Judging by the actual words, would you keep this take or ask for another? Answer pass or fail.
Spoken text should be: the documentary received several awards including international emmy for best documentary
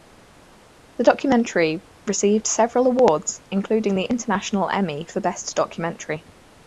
fail